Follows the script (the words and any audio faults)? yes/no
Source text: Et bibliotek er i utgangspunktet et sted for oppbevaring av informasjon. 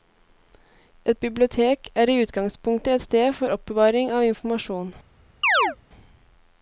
no